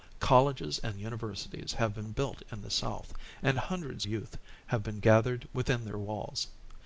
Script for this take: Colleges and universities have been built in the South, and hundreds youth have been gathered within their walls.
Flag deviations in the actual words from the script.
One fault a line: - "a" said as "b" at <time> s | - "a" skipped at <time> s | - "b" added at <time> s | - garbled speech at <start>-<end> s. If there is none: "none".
none